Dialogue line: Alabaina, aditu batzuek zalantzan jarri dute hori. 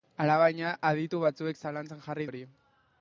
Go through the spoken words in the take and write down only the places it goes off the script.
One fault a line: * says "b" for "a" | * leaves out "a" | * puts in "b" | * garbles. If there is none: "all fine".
* leaves out "dute"